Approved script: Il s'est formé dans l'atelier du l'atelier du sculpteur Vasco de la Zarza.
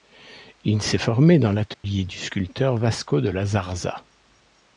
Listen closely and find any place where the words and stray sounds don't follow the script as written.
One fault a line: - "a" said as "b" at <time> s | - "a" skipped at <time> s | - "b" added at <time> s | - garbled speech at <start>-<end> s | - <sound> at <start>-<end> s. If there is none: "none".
- dropout at 1.7-1.8 s
- "l'atelier du" skipped at 2.2 s